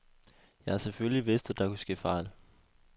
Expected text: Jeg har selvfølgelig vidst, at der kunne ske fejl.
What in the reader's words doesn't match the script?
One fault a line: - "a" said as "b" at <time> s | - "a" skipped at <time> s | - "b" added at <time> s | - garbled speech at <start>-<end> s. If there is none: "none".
none